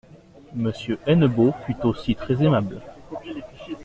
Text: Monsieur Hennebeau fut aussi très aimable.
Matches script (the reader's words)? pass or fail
pass